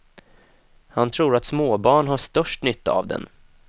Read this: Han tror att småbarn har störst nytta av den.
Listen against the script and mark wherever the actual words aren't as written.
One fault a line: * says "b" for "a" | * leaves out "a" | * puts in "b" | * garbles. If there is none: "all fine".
all fine